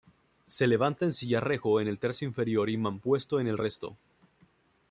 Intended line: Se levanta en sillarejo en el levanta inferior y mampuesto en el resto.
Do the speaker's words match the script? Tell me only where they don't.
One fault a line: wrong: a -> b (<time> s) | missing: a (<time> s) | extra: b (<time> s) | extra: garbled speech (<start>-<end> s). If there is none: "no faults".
wrong: levanta -> tercio (2.0 s)